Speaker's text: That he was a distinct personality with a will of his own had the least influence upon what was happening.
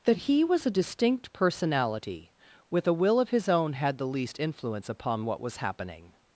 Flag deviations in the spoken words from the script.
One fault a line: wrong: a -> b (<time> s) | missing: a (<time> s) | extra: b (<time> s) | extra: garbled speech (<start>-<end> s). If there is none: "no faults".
no faults